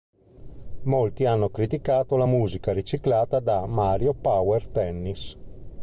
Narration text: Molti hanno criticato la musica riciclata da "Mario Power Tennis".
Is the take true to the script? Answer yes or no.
yes